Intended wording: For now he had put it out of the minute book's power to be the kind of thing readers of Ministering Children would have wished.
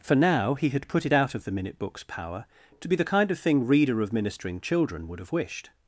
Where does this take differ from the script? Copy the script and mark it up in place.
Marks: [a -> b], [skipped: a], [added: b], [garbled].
For now he had put it out of the minute book's power to be the kind of thing [readers -> reader] of Ministering Children would have wished.